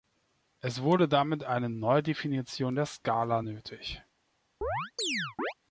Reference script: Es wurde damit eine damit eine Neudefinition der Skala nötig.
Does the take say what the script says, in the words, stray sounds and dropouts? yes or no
no